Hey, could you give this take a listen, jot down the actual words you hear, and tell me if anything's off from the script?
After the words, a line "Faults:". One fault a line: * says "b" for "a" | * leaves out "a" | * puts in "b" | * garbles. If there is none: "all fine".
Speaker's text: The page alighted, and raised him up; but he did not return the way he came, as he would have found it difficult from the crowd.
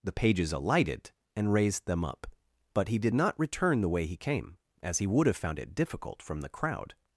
The pages alighted, and raised them up; but he did not return the way he came, as he would have found it difficult from the crowd.
Faults:
* says "pages" for "page"
* says "them" for "him"